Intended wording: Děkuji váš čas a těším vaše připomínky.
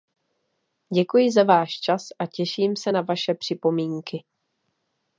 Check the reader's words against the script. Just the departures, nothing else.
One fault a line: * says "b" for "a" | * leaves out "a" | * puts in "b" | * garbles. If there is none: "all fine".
* puts in "za"
* puts in "se na"